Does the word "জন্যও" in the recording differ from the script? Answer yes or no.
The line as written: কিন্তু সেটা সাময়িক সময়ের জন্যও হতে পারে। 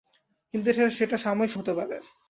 yes